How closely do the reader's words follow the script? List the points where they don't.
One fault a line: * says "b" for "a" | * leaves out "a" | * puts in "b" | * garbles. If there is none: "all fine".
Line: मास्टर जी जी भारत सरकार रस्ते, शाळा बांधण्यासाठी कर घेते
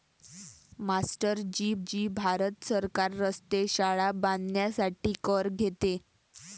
all fine